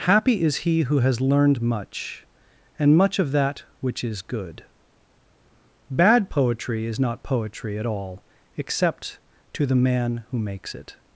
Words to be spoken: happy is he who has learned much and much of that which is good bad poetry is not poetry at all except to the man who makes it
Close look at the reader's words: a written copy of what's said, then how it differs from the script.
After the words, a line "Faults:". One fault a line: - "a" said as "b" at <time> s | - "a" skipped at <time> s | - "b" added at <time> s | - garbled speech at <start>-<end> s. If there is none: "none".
happy is he who has learned much and much of that which is good bad poetry is not poetry at all except to the man who makes it
Faults:
none